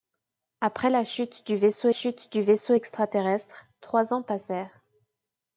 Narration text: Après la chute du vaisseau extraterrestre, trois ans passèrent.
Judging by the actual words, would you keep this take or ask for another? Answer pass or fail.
fail